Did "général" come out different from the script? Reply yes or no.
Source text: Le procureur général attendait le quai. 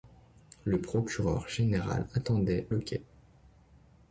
no